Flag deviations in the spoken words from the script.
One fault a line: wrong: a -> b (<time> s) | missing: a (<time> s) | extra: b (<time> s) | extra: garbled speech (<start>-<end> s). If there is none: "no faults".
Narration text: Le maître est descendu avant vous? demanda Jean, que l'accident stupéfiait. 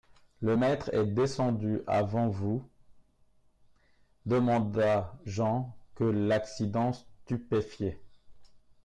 no faults